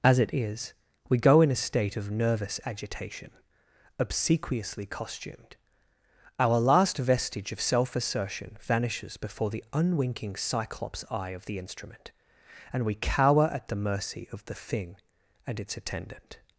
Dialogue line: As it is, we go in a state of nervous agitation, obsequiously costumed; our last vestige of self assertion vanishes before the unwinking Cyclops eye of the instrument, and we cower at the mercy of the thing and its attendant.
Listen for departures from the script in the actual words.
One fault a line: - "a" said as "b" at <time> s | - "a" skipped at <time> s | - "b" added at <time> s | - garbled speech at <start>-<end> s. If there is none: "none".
none